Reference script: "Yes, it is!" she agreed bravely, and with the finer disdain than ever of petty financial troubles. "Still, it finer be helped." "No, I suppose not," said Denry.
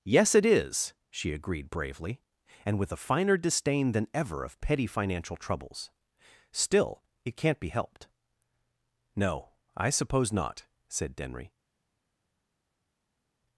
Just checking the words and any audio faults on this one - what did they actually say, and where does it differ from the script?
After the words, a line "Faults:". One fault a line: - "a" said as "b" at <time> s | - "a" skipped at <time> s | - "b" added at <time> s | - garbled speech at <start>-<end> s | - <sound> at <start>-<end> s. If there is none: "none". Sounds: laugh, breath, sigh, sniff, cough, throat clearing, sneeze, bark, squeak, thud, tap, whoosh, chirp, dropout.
"Yes, it is!" she agreed bravely, and with a finer disdain than ever of petty financial troubles. "Still, it can't be helped." "No, I suppose not," said Denry.
Faults:
- "the" said as "a" at 2.9 s
- "finer" said as "can't" at 7.4 s